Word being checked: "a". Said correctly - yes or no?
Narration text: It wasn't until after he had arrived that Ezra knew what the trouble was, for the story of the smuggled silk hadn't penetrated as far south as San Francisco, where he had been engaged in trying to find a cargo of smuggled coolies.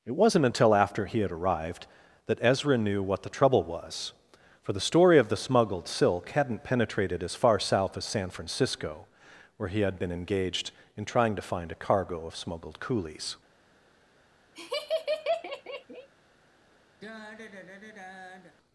yes